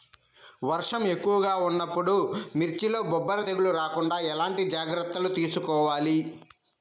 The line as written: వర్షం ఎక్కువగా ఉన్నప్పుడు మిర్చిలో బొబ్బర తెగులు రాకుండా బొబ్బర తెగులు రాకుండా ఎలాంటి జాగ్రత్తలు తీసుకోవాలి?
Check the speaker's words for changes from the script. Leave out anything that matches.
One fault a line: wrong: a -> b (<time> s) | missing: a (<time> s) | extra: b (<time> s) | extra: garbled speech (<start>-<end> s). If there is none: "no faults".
missing: బొబ్బర తెగులు రాకుండా (4.2 s)